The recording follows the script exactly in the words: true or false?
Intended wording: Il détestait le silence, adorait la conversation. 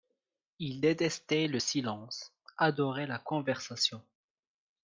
true